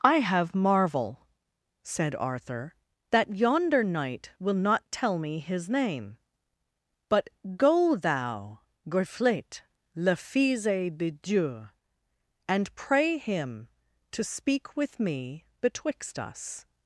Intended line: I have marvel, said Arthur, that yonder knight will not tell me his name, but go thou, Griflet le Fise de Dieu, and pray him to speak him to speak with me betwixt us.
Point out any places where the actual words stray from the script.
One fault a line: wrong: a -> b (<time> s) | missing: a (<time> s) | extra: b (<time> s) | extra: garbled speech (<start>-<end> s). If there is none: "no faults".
missing: him to speak (14.8 s)